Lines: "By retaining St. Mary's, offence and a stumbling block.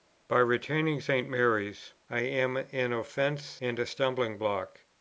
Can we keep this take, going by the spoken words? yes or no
no